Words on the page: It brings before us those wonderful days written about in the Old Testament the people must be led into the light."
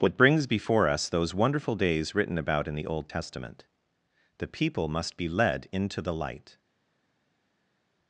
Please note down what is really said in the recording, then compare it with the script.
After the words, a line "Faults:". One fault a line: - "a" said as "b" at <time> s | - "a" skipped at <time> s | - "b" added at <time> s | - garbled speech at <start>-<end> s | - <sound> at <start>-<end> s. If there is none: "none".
What brings before us those wonderful days written about in the Old Testament the people must be led into the light."
Faults:
- "It" said as "What" at 0.0 s